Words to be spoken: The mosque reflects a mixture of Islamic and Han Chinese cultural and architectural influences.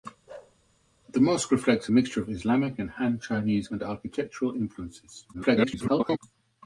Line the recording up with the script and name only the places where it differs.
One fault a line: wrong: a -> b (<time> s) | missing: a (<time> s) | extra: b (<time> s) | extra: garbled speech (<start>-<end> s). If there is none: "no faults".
missing: cultural (3.7 s)
extra: garbled speech (5.3-6.2 s)